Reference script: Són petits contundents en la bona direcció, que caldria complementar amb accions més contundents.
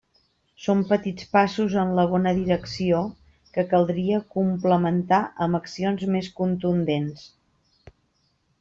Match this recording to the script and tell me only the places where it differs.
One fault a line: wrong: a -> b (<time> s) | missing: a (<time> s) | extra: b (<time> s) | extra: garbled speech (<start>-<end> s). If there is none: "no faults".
wrong: contundents -> passos (1.4 s)